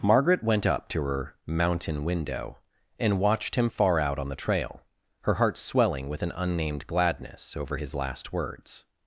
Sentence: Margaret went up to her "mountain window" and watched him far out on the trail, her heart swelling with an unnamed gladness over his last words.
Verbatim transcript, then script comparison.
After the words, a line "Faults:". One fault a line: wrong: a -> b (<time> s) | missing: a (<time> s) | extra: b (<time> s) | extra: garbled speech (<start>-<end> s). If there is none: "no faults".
Margaret went up to her "mountain window" and watched him far out on the trail, her heart swelling with an unnamed gladness over his last words.
Faults:
no faults